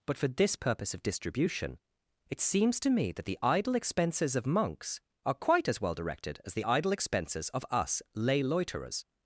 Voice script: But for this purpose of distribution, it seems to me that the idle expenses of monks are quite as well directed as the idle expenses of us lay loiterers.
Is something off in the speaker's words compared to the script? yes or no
no